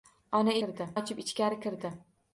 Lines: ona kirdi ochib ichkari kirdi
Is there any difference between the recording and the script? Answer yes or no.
no